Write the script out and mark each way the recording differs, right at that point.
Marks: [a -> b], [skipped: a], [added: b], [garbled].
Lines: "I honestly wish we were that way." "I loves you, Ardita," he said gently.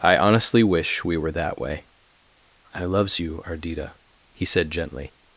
"I honestly wish we were that way." "I loves you, Ardita," he said gently.